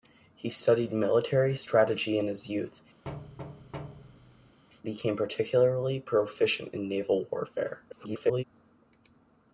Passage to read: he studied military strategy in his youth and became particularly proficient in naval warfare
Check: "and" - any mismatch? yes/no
yes